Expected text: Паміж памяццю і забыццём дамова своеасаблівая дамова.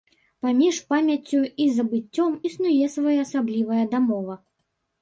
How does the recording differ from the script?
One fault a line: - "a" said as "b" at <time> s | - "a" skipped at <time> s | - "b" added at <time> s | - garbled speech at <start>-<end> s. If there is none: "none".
- "дамова" said as "існуе" at 2.5 s